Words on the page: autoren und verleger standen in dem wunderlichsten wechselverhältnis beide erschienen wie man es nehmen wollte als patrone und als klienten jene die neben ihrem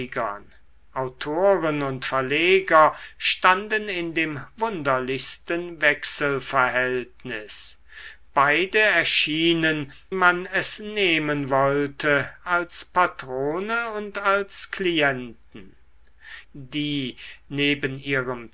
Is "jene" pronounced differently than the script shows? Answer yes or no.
yes